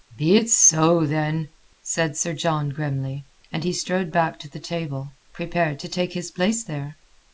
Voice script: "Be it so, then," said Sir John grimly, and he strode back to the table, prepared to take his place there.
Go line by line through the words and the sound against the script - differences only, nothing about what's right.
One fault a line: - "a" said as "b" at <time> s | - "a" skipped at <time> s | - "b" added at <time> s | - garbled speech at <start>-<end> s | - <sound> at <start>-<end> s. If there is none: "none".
none